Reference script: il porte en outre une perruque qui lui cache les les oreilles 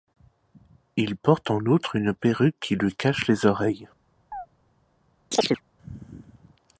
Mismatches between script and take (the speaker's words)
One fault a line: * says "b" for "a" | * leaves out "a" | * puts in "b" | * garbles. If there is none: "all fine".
* leaves out "les"